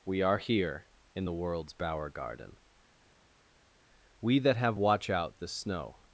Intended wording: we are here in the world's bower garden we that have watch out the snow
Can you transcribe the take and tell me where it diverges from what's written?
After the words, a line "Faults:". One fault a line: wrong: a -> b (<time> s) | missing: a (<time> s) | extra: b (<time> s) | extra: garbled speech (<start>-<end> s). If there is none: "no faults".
we are here in the world's bower garden we that have watch out the snow
Faults:
no faults